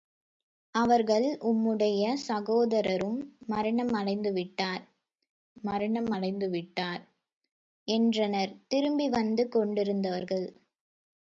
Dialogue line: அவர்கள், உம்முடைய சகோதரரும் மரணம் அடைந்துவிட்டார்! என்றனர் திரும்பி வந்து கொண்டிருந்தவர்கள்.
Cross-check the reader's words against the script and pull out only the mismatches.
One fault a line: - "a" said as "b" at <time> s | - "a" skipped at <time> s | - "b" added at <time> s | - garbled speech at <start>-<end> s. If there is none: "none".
- "மரணம் அடைந்துவிட்டார்" added at 5.6 s